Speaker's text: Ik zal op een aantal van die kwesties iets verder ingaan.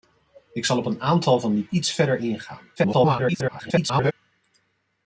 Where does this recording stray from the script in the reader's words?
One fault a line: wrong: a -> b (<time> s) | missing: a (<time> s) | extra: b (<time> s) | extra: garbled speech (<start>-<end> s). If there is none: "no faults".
missing: kwesties (1.6 s)
extra: garbled speech (2.8-4.1 s)